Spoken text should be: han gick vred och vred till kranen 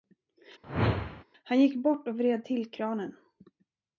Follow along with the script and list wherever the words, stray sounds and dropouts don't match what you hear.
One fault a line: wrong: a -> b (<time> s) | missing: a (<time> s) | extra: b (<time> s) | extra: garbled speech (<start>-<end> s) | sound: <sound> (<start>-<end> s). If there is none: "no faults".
sound: whoosh (0.6-1.2 s)
wrong: vred -> bort (1.8 s)